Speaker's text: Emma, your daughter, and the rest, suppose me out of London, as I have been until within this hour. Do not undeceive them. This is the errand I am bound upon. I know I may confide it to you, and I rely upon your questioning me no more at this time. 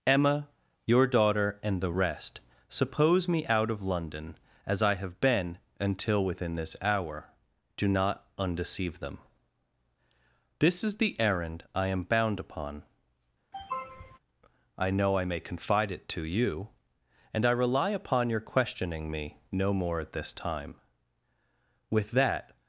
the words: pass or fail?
fail